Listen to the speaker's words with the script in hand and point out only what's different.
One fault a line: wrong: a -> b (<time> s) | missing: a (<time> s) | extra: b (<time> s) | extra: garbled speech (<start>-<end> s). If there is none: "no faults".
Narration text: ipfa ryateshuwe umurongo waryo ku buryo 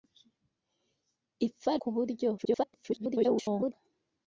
missing: ryateshuwe umurongo waryo (1.7 s)
extra: garbled speech (2.4-3.7 s)